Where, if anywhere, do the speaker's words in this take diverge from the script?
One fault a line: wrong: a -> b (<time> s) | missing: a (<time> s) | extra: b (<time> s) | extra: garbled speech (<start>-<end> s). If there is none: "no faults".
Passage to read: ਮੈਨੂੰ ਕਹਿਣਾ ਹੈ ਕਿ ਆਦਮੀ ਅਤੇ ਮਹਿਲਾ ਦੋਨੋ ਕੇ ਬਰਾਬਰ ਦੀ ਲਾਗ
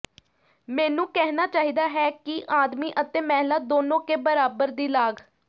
extra: ਚਾਹੀਦਾ (1.5 s)